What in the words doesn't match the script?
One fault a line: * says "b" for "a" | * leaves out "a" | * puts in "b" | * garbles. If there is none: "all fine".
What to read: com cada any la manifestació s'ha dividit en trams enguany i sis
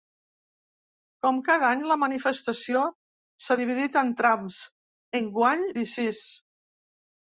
all fine